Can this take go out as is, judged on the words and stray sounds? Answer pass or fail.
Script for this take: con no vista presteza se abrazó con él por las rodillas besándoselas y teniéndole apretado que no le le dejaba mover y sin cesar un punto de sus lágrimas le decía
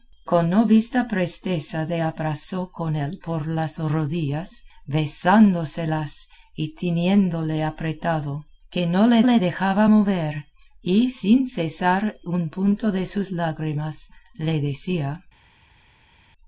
pass